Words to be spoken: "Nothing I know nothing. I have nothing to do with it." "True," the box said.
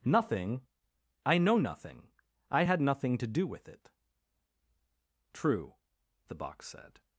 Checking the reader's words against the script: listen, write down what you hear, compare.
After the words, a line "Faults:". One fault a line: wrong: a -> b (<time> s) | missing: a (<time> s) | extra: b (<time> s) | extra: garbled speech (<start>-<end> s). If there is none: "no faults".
"Nothing I know nothing. I had nothing to do with it." "True," the box said.
Faults:
wrong: have -> had (2.6 s)